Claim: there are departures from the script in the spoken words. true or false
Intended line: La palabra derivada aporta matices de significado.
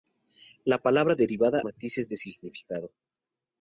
true